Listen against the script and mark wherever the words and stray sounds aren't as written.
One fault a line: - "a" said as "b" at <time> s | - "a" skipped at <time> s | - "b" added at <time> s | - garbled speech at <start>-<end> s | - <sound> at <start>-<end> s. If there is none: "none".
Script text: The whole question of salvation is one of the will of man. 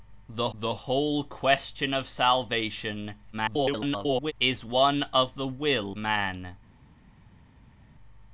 - "the" added at 0.5 s
- garbled speech at 3.3-4.3 s
- "of" skipped at 6.0 s